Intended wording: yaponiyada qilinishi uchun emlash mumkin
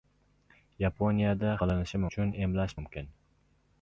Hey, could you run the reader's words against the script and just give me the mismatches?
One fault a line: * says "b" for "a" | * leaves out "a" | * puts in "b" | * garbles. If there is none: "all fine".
all fine